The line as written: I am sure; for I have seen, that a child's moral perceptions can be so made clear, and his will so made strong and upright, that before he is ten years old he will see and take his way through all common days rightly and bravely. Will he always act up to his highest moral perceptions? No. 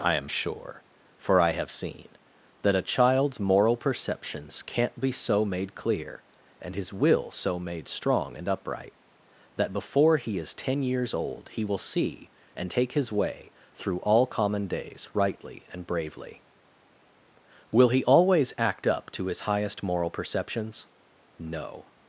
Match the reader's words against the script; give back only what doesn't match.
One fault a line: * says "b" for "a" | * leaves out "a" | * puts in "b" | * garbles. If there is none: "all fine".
* says "can't" for "can"